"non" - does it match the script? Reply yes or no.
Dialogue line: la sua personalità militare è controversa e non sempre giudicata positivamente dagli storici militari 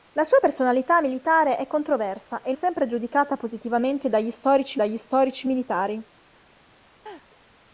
no